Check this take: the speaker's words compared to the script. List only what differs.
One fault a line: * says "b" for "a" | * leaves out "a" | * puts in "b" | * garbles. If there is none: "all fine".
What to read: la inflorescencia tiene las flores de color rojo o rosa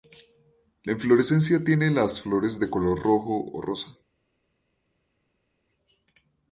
all fine